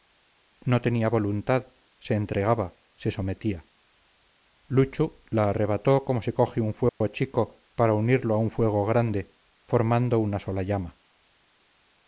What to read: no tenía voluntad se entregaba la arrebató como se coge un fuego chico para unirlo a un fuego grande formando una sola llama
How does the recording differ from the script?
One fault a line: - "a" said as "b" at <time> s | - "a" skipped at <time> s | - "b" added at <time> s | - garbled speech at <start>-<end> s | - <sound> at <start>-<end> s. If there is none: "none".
- "se sometía luchu" added at 3.0 s
- dropout at 6.9-7.0 s